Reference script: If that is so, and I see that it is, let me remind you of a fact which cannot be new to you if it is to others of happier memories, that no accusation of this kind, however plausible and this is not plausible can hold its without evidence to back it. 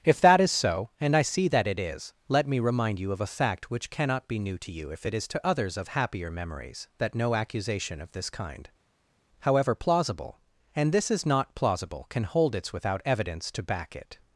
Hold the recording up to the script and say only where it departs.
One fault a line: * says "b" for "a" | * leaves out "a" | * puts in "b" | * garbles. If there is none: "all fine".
all fine